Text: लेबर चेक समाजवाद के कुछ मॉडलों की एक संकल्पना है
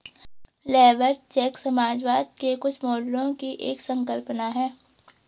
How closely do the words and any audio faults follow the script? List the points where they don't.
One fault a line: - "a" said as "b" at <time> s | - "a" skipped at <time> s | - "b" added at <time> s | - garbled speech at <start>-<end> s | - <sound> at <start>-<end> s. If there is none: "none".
none